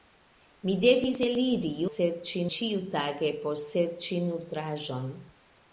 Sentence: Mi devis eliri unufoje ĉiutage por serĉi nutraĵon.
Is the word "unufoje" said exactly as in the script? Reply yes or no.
no